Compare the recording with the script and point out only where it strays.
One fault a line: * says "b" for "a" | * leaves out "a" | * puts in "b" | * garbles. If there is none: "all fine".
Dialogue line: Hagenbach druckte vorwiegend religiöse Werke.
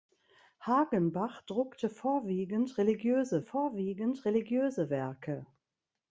* puts in "vorwiegend religiöse"